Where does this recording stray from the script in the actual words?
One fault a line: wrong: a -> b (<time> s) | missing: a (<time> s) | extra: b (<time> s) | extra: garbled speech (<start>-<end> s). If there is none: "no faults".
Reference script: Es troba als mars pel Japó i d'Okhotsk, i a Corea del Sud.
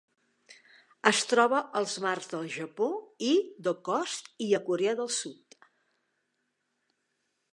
wrong: pel -> del (2.3 s)